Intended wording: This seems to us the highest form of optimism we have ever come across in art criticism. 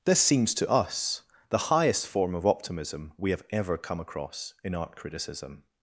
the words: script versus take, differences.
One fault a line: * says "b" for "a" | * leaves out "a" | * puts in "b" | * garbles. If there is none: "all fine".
all fine